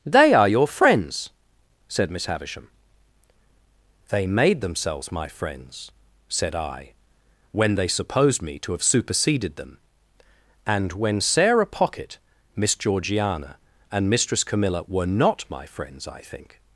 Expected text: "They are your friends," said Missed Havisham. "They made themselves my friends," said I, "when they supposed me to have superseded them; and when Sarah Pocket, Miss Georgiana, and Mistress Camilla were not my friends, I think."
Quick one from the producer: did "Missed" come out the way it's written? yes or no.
no